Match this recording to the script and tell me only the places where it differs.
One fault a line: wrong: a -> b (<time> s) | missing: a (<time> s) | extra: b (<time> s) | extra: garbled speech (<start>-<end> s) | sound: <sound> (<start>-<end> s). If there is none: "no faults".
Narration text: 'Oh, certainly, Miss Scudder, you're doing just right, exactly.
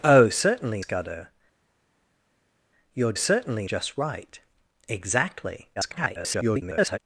missing: Miss (0.8 s)
wrong: doing -> certainly (3.1 s)
extra: garbled speech (5.8-7.0 s)